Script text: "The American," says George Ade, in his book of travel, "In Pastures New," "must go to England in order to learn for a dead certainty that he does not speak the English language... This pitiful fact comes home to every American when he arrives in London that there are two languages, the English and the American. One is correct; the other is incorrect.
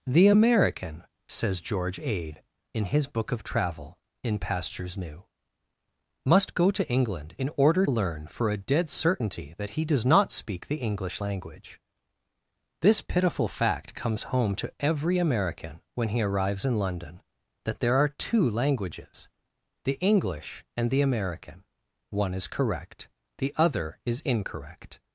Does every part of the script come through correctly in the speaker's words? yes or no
no